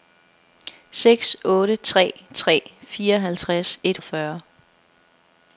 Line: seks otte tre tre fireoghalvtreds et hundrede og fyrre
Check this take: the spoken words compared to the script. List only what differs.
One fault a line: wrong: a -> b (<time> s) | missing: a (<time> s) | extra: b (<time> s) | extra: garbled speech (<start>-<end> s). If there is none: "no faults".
missing: hundrede (4.0 s)